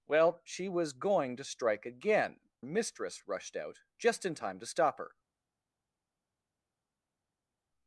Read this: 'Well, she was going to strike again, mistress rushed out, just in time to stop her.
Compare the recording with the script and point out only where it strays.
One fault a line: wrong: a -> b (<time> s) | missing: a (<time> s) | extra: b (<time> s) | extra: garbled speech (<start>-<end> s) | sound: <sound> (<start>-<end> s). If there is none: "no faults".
no faults